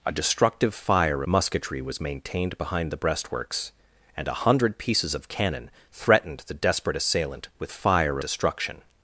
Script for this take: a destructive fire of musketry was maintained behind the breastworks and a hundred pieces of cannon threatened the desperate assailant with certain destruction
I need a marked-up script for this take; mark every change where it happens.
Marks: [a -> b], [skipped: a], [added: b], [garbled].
a destructive fire [skipped: of] musketry was maintained behind the breastworks and a hundred pieces of cannon threatened the desperate assailant with [certain -> fire] destruction